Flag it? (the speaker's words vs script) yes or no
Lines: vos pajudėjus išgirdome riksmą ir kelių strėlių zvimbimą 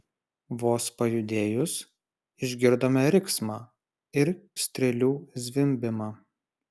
yes